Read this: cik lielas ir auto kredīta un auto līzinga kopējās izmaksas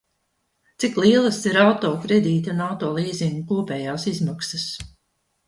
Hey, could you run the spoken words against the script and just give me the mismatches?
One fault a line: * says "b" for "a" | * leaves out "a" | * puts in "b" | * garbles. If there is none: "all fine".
all fine